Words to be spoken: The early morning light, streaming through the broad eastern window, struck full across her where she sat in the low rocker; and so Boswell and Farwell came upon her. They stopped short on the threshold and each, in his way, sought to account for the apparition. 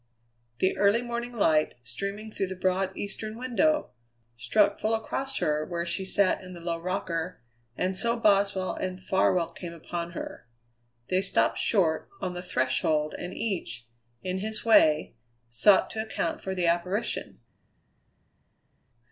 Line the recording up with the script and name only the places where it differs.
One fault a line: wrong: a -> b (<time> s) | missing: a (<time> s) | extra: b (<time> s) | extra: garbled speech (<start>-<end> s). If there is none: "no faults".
no faults